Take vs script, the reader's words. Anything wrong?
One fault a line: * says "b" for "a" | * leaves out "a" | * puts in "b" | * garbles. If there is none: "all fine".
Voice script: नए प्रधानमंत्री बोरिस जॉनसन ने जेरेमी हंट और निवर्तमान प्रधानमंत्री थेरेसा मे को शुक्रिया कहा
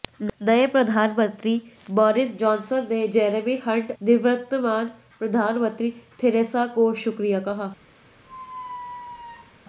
* leaves out "और"